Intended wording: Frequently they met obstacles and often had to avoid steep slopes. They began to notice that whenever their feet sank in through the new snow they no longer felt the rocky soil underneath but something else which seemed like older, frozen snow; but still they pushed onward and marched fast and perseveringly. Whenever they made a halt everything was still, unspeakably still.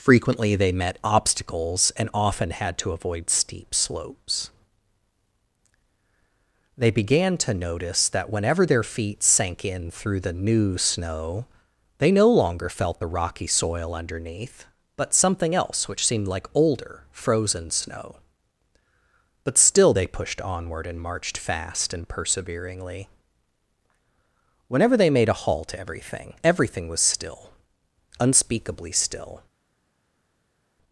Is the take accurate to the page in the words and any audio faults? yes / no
no